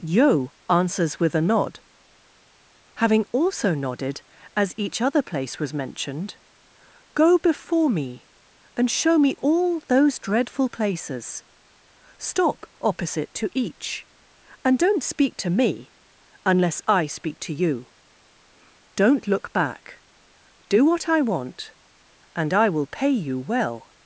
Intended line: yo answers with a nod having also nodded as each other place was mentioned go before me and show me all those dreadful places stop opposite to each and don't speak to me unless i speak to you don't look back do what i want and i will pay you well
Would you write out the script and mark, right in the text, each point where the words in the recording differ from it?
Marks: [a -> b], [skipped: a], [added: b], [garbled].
yo answers with a nod having also nodded as each other place was mentioned go before me and show me all those dreadful places stop opposite to each and don't speak to me unless i speak to you don't look back do what i want and i will pay you well